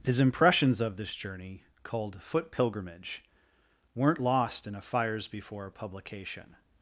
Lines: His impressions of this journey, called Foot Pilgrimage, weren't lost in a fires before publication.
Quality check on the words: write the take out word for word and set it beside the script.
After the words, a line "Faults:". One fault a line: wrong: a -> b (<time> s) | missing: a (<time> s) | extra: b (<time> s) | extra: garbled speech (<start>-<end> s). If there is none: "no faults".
His impressions of this journey, called Foot Pilgrimage, weren't lost in a fires before publication.
Faults:
no faults